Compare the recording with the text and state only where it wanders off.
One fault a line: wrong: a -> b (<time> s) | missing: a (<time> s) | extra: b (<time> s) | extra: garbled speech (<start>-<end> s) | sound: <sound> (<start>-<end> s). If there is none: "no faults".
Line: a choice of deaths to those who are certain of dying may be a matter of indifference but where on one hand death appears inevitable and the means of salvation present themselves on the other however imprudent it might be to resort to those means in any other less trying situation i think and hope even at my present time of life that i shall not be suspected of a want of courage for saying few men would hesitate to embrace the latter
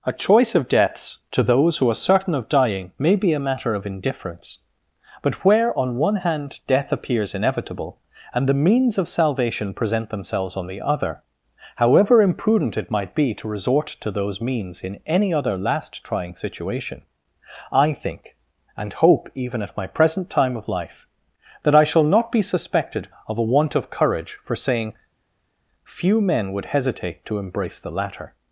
wrong: less -> last (15.6 s)